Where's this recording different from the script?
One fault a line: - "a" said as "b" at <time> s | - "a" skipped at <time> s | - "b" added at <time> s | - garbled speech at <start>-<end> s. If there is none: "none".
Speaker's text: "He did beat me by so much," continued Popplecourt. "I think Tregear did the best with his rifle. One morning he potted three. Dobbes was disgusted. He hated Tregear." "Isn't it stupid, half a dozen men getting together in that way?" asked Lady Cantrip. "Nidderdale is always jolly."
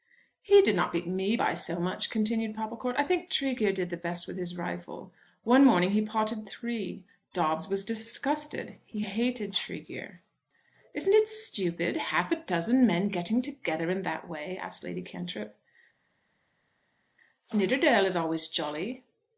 - "not" added at 0.8 s